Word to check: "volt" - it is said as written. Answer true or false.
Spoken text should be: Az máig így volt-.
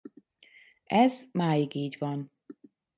false